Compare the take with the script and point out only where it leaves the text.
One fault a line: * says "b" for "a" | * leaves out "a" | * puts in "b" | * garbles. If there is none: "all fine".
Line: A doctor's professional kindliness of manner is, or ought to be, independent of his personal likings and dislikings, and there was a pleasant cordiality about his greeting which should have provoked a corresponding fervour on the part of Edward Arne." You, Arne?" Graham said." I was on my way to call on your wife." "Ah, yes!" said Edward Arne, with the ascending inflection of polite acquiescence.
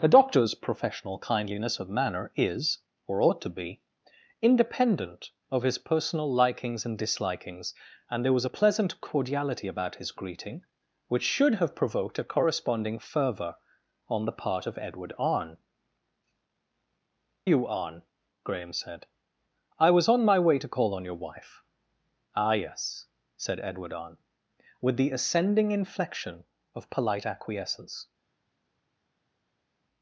all fine